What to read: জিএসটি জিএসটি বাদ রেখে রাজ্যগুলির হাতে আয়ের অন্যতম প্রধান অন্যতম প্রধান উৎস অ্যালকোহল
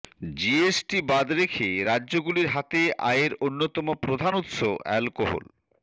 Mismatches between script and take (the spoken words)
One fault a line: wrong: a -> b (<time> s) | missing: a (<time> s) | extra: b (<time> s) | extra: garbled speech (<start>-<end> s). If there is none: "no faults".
missing: জিএসটি (1.0 s)
missing: অন্যতম প্রধান (4.3 s)